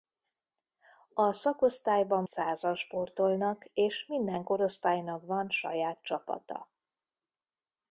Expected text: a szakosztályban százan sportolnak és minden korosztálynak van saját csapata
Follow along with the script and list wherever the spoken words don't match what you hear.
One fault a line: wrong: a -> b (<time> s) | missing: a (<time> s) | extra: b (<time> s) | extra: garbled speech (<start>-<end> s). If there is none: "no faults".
no faults